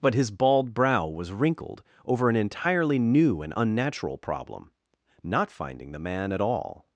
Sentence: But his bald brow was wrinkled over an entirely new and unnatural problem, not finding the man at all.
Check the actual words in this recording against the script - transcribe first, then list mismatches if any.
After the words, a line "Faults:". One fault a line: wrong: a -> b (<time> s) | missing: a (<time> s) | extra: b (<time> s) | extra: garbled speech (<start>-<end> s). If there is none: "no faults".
But his bald brow was wrinkled over an entirely new and unnatural problem, not finding the man at all.
Faults:
no faults